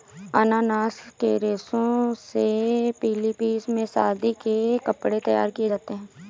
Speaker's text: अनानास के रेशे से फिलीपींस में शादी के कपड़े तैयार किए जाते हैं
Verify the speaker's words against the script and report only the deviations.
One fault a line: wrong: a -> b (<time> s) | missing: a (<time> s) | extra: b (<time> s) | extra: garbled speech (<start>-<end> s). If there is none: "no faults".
no faults